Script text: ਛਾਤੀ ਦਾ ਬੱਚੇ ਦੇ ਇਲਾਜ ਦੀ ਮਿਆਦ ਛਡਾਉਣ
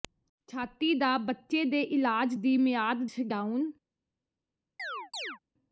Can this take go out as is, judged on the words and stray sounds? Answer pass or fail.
fail